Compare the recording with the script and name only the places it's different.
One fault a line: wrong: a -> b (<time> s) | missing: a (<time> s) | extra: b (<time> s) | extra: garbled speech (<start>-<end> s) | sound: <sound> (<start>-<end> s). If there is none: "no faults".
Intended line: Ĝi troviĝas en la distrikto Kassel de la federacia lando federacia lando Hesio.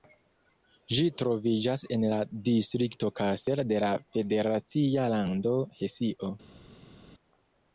missing: federacia lando (5.6 s)